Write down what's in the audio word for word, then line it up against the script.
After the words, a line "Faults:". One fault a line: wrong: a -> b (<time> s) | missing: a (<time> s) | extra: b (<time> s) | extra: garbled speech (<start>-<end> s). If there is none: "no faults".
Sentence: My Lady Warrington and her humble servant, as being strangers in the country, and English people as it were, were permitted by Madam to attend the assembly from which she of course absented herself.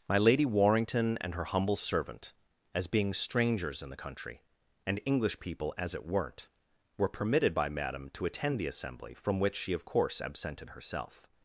My Lady Warrington and her humble servant, as being strangers in the country, and English people as it weren't, were permitted by Madam to attend the assembly from which she of course absented herself.
Faults:
wrong: were -> weren't (6.1 s)